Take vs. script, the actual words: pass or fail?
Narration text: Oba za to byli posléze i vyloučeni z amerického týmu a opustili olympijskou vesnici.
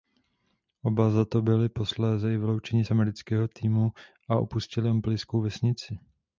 pass